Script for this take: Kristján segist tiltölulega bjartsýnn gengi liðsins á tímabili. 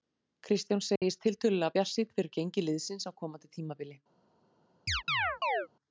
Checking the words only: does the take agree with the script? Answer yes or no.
no